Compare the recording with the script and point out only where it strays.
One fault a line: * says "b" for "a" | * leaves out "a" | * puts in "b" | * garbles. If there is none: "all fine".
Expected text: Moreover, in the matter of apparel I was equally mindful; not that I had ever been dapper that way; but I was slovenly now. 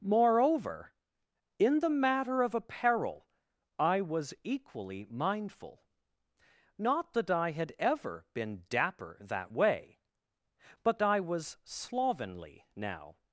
all fine